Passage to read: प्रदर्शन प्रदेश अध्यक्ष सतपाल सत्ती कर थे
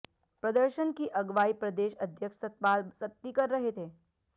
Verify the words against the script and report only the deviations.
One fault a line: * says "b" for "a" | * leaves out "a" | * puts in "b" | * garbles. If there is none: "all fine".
* puts in "की अगवाई"
* puts in "रहे"